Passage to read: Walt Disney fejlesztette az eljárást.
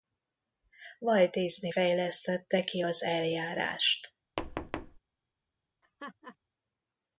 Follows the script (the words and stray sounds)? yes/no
no